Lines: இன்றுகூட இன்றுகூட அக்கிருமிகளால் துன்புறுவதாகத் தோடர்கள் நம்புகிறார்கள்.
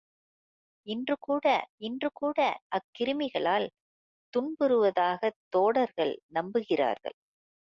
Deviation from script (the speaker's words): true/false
false